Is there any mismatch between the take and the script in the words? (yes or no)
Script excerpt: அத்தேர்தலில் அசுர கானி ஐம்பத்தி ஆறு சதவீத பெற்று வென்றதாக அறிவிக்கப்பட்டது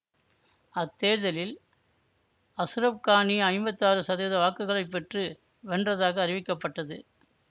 yes